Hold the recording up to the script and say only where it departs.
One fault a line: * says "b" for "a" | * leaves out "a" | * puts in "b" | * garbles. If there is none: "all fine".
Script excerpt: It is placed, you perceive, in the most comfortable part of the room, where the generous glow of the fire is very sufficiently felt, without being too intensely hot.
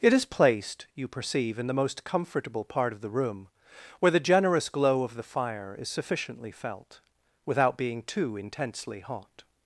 * leaves out "very"